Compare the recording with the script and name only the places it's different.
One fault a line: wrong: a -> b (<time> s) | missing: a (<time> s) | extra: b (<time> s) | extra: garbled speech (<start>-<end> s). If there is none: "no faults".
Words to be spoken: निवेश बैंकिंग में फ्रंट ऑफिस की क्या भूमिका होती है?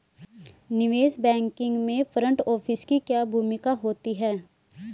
no faults